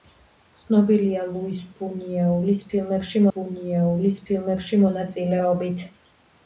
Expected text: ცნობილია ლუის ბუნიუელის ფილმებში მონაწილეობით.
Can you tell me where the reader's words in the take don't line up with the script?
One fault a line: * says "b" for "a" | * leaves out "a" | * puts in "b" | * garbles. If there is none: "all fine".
* puts in "ბუნიუელის ფილმებში"